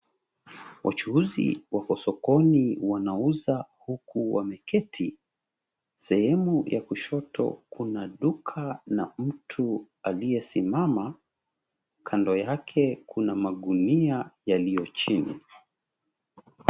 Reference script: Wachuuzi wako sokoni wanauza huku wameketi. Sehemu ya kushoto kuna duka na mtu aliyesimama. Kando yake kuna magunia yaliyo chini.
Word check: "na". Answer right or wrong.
right